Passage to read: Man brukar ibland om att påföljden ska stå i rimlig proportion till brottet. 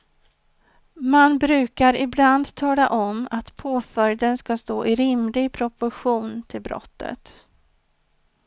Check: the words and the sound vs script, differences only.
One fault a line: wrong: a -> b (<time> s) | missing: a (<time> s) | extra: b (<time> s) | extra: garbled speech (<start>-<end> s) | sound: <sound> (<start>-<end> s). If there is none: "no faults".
extra: tala (2.5 s)